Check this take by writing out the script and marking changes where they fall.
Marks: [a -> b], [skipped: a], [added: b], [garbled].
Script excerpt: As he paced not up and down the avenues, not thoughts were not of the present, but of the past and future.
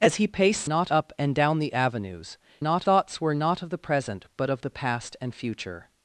As he paced not up and down the avenues, not thoughts were not of the present, but of the past and future.